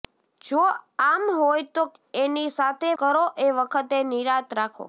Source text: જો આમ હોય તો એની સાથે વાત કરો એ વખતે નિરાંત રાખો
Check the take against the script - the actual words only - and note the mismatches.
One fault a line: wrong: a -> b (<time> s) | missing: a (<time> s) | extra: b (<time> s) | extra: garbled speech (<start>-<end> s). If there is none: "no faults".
missing: વાત (2.9 s)